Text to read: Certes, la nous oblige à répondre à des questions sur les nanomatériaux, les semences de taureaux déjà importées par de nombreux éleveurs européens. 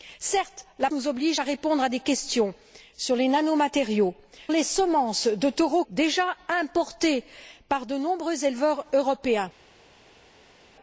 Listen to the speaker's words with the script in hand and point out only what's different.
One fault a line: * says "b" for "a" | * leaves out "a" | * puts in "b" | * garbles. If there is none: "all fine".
all fine